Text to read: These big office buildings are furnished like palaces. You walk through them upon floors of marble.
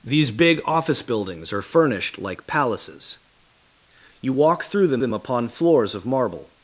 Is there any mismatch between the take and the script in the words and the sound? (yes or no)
yes